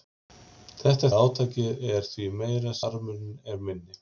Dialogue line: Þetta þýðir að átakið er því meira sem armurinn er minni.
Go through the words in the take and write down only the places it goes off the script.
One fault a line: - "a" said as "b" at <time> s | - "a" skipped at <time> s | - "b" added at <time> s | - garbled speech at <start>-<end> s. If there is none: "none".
- "þýðir" skipped at 1.1 s
- "sem" skipped at 2.8 s